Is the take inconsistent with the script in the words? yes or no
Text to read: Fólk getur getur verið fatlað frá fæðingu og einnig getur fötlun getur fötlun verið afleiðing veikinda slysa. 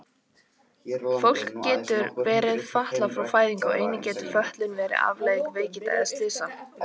yes